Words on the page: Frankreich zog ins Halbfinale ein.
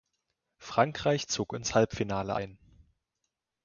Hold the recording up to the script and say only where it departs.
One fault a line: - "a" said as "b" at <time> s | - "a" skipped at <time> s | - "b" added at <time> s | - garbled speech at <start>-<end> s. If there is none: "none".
none